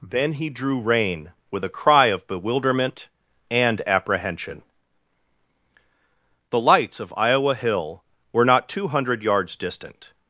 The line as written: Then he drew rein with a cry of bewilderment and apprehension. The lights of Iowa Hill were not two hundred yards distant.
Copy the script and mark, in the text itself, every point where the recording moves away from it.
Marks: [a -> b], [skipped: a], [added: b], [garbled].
Then he drew rein with a cry of bewilderment and apprehension. The lights of Iowa Hill were not two hundred yards distant.